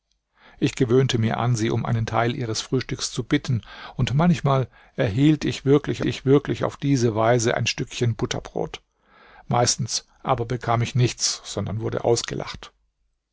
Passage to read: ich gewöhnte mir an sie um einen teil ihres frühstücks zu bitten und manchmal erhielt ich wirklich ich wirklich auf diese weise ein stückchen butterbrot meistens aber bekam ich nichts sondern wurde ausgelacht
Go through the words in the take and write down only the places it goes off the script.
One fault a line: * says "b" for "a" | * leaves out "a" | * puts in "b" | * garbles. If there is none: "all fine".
all fine